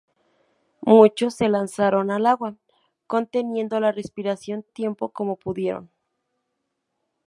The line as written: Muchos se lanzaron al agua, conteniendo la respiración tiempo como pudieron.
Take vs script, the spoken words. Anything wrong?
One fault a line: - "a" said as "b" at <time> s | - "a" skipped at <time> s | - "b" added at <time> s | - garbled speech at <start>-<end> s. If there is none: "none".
none